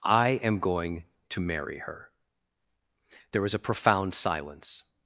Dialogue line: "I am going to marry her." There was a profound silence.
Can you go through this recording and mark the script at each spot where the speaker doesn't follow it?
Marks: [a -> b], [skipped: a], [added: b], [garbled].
"I am going to marry her." There was a profound silence.